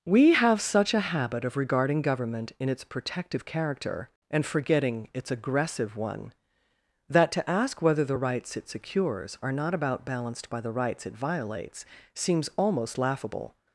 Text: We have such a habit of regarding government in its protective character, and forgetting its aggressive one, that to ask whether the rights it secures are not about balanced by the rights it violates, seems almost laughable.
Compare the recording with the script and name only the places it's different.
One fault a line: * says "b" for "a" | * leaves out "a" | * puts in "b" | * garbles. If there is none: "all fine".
all fine